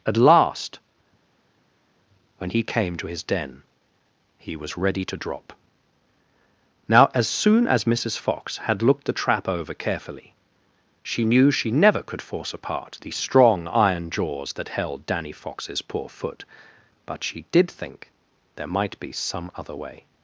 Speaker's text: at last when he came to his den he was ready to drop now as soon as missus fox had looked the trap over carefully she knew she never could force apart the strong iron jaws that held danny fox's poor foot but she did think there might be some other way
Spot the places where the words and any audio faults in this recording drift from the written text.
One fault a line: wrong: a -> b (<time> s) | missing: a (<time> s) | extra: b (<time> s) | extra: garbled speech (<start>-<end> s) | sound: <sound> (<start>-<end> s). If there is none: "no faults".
no faults